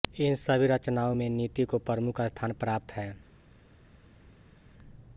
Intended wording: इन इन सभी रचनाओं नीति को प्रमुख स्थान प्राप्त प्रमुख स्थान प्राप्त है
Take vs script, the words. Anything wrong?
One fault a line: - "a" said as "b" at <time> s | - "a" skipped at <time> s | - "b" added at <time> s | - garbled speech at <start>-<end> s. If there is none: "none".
- "इन" skipped at 0.3 s
- "में" added at 1.1 s
- "प्रमुख स्थान प्राप्त" skipped at 2.9 s